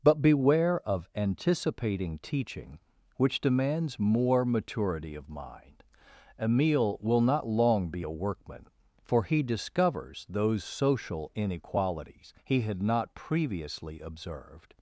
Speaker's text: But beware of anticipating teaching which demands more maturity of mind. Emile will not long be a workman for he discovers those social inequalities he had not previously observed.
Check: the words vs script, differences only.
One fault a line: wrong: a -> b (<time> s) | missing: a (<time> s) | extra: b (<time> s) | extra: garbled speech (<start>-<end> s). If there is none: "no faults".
no faults